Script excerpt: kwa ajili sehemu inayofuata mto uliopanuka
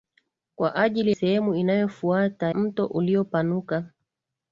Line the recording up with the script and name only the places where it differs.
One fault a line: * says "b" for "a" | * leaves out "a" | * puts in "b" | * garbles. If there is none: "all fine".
all fine